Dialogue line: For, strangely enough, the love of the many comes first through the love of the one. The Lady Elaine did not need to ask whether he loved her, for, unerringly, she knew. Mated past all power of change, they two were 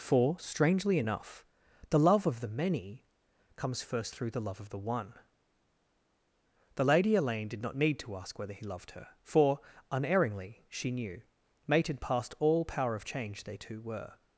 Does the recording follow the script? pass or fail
pass